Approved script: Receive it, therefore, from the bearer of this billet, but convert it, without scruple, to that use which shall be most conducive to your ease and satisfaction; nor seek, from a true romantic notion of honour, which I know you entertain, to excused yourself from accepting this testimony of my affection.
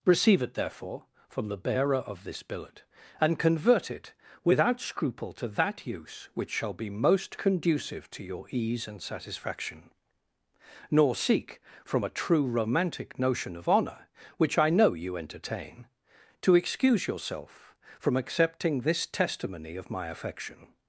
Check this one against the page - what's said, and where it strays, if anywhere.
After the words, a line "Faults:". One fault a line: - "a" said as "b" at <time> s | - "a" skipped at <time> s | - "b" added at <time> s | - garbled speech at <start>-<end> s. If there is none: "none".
Receive it, therefore, from the bearer of this billet, and convert it, without scruple, to that use which shall be most conducive to your ease and satisfaction; nor seek, from a true romantic notion of honour, which I know you entertain, to excuse yourself from accepting this testimony of my affection.
Faults:
- "but" said as "and" at 3.2 s
- "excused" said as "excuse" at 16.6 s